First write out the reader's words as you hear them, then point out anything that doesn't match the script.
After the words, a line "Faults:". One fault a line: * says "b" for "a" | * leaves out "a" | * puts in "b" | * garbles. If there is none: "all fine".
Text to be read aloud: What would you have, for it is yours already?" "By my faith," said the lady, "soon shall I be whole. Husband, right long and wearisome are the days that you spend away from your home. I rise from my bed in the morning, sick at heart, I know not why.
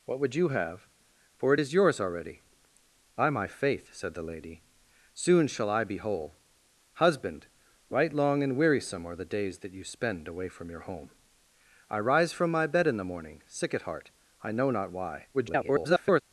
What would you have, for it is yours already?" "By my faith," said the lady, "soon shall I be whole. Husband, right long and wearisome are the days that you spend away from your home. I rise from my bed in the morning, sick at heart, I know not why. [garbled]
Faults:
* garbles